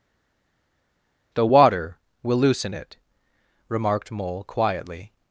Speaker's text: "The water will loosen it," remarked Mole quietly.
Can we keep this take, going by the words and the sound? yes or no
yes